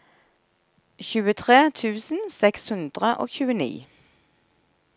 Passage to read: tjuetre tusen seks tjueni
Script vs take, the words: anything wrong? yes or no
yes